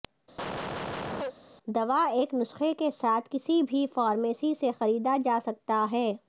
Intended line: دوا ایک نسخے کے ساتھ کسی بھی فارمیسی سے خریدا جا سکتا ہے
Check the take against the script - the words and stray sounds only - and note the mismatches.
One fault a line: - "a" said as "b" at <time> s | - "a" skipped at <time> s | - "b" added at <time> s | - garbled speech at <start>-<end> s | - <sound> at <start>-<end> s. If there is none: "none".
- cough at 0.4-1.3 s